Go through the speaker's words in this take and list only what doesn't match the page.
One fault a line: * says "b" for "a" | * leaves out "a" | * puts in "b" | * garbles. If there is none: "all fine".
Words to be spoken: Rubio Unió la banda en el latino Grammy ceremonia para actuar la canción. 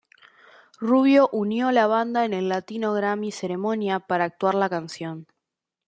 all fine